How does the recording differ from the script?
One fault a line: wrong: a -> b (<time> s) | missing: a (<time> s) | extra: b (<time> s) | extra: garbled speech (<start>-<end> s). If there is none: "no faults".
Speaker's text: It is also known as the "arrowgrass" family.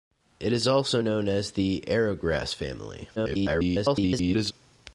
extra: garbled speech (3.2-4.5 s)